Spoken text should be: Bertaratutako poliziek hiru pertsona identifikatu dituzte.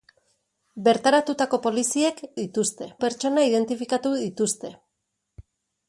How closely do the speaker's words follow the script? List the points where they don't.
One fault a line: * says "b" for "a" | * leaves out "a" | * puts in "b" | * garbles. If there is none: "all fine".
* says "dituzte" for "hiru"